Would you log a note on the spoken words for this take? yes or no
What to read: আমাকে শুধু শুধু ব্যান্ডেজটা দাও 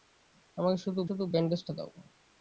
no